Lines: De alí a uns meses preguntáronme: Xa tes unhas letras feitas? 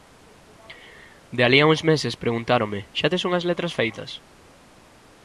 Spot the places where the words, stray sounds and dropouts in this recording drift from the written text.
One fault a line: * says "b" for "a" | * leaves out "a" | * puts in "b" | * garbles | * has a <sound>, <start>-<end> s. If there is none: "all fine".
all fine